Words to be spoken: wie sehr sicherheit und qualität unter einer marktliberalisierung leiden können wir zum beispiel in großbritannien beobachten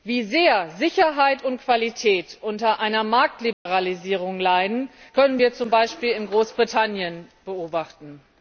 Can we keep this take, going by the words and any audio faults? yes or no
no